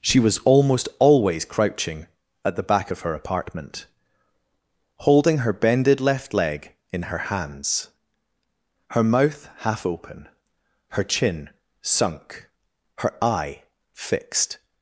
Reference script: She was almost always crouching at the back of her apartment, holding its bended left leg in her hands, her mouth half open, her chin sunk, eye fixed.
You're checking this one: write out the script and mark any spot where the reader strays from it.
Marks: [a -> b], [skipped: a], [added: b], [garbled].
She was almost always crouching at the back of her apartment, holding [its -> her] bended left leg in her hands, her mouth half open, her chin sunk, [added: her] eye fixed.